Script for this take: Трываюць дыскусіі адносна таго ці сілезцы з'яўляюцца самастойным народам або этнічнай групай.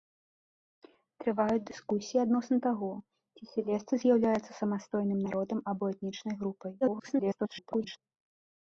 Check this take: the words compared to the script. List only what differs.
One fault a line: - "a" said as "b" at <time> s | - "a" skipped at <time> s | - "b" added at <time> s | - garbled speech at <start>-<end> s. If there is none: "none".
- garbled speech at 6.8-8.0 s